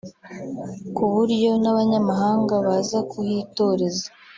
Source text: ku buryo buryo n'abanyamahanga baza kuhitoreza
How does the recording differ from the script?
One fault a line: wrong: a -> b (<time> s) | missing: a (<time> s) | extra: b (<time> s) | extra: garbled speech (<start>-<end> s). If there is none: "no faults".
missing: buryo (1.5 s)